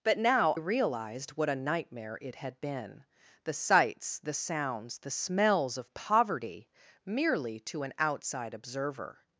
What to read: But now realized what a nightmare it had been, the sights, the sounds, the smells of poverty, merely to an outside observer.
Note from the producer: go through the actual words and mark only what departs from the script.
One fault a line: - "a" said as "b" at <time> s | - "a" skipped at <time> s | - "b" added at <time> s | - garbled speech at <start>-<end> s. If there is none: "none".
none